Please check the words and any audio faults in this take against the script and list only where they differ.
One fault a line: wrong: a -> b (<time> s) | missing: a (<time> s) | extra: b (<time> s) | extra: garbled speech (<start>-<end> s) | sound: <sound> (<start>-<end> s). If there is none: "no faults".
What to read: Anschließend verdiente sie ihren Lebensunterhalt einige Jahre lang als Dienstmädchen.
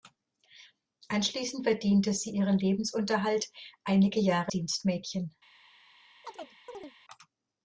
missing: lang als (4.5 s)
sound: chirp (6.2-6.9 s)